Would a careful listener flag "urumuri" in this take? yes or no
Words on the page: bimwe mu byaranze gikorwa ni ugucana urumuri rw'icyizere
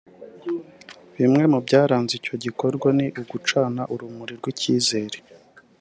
no